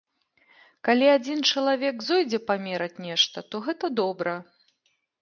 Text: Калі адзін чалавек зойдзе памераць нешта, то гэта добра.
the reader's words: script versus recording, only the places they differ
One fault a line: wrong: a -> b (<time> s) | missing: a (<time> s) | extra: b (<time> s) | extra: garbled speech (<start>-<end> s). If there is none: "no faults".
no faults